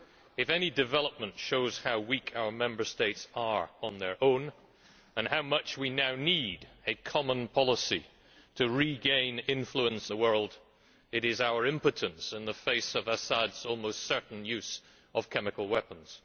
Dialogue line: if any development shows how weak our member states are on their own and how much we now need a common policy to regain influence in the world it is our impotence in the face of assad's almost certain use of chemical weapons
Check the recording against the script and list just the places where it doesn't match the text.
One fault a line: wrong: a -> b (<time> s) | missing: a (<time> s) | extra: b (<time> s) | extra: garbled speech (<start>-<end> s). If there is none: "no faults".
missing: in (10.1 s)